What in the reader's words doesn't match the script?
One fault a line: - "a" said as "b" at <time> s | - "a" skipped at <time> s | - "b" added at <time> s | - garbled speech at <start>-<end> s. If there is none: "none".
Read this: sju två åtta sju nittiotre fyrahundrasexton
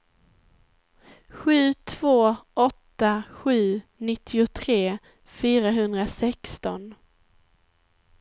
none